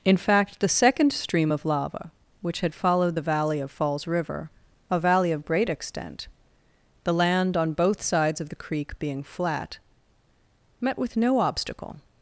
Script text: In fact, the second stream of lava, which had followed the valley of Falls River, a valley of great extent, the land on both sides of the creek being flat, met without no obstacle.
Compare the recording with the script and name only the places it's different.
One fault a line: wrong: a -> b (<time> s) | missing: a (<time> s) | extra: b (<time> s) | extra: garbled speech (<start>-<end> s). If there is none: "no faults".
wrong: without -> with (11.0 s)